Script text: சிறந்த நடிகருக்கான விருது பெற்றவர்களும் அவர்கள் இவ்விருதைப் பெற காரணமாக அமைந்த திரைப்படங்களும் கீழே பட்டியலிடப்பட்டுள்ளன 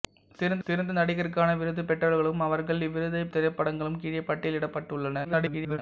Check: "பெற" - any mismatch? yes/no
yes